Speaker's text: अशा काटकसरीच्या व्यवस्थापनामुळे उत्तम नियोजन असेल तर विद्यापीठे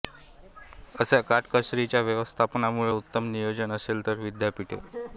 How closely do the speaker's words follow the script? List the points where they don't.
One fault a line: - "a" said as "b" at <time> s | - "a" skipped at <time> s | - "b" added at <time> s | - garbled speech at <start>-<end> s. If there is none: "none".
none